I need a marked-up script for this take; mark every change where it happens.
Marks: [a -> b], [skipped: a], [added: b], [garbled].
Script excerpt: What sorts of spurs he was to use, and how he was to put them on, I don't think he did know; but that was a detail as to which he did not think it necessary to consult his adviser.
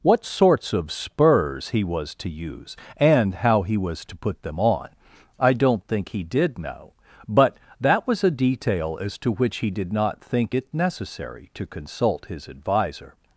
What sorts of spurs he was to use, and how he was to put them on, I don't think he did know; but that was a detail as to which he did not think it necessary to consult his adviser.